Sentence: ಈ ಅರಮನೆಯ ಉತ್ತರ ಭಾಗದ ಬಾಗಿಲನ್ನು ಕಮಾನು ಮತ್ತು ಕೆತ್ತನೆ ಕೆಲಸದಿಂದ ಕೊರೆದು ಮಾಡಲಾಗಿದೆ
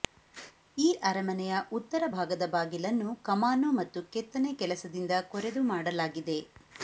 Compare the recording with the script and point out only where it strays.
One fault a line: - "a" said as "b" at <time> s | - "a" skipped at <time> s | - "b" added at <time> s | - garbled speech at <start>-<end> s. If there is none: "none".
none